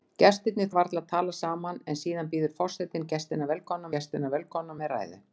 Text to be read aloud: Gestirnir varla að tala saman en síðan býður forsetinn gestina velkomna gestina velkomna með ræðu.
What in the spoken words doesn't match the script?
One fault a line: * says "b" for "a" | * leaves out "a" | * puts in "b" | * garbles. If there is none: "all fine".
all fine